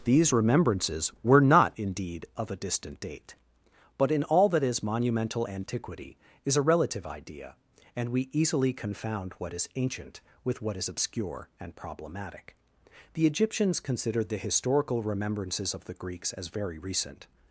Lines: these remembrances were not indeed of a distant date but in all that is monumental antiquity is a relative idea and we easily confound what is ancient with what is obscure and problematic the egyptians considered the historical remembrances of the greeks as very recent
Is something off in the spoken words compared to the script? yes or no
no